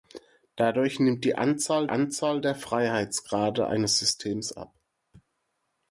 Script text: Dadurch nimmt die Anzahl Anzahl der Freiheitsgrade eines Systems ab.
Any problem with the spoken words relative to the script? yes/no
no